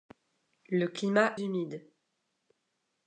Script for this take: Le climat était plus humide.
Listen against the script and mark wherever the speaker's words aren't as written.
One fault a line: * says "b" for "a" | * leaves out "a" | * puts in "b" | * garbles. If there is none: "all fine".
* leaves out "était plus"